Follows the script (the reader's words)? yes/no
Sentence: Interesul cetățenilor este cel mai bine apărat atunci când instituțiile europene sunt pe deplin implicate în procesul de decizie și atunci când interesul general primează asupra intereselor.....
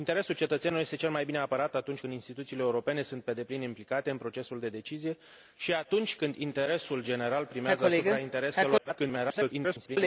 no